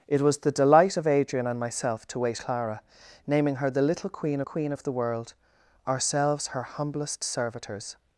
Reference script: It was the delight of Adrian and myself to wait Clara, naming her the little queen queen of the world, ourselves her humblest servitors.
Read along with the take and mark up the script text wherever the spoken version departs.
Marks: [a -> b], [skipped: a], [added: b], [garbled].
It was the delight of Adrian and myself to wait Clara, naming her the little queen queen of the world, ourselves her humblest servitors.